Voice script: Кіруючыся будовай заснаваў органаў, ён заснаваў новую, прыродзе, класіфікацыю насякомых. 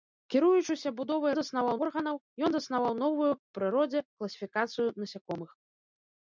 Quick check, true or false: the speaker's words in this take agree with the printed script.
true